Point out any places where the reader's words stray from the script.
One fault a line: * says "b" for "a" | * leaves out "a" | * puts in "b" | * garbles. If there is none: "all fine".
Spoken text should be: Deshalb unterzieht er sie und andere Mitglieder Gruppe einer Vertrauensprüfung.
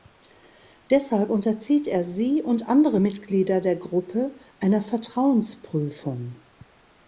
* puts in "der"